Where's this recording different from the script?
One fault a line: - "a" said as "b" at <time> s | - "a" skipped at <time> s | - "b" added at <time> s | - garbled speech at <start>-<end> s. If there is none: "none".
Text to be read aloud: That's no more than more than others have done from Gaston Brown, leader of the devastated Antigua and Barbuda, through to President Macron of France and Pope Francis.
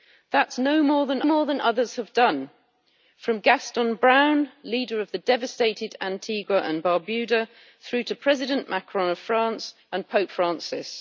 none